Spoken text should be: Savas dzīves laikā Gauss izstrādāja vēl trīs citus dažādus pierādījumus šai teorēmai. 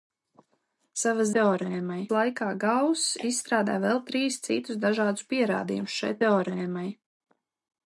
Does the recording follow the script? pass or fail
fail